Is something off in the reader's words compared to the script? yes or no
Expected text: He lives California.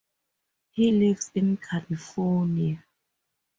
yes